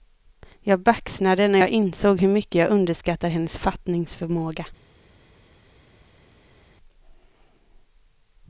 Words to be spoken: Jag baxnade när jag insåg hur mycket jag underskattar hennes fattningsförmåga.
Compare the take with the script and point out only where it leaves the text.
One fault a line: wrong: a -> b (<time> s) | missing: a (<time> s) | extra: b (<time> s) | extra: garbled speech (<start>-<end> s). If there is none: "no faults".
no faults